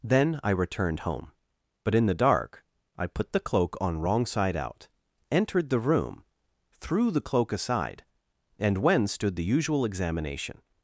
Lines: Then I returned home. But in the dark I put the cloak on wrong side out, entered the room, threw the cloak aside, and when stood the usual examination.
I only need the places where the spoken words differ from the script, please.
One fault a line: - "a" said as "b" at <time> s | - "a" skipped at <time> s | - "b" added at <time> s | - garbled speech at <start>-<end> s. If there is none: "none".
none